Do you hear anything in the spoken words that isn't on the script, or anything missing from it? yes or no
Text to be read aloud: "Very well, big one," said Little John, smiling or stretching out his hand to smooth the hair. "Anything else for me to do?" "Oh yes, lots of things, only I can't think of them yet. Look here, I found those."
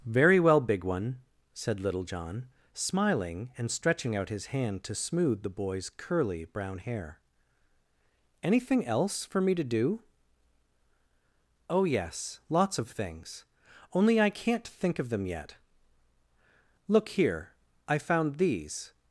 yes